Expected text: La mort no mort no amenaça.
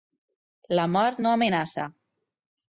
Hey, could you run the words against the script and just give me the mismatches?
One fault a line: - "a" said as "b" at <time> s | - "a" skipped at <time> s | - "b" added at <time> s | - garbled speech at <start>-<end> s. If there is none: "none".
- "mort no" skipped at 1.4 s